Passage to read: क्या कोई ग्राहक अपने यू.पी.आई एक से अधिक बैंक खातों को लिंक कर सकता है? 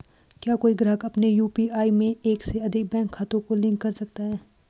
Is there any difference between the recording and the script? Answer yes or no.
yes